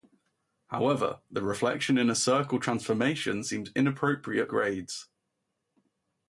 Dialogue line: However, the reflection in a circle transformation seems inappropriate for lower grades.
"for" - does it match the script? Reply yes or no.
no